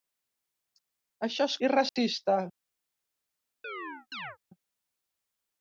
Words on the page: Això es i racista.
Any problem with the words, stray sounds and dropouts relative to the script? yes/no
yes